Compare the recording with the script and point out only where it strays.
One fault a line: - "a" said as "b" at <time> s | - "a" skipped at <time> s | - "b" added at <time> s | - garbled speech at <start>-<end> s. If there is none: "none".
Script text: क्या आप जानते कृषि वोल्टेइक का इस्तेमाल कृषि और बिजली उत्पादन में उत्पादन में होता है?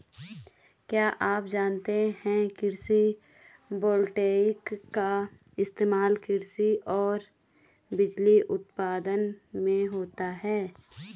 - "है" added at 2.2 s
- "उत्पादन में" skipped at 9.9 s